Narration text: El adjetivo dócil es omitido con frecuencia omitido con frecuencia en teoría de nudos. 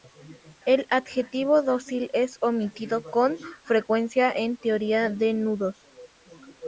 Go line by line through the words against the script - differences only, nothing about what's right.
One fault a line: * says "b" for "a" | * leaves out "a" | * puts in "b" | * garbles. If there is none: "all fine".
* leaves out "omitido con frecuencia"